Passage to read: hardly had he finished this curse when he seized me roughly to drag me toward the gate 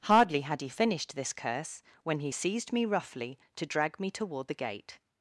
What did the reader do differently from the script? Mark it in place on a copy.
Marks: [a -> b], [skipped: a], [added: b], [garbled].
hardly had he finished this curse when he seized me roughly to drag me toward the gate